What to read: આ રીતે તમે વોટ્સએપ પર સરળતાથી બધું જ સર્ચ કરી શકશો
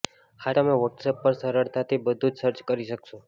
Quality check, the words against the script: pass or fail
fail